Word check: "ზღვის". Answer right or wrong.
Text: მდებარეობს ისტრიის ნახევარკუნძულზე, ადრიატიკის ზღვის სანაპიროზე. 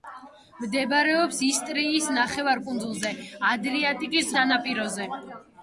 wrong